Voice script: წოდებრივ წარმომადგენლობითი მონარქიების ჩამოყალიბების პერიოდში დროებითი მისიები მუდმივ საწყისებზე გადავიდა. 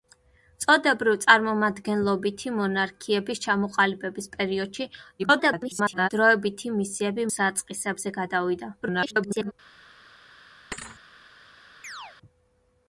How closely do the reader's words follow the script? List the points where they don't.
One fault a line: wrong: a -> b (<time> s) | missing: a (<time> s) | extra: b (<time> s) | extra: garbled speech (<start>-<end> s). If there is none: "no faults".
extra: garbled speech (5.2-6.1 s)
missing: მუდმივ (7.3 s)
extra: garbled speech (8.8-9.5 s)